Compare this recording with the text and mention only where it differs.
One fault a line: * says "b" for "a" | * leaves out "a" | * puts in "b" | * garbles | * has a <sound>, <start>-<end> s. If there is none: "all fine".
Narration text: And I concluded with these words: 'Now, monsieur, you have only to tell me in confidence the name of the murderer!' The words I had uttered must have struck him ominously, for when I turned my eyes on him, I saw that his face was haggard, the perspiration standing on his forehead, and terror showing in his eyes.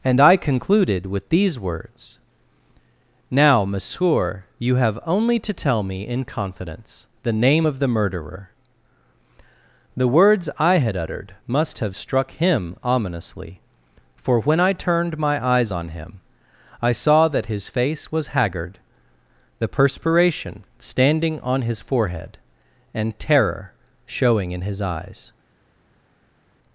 all fine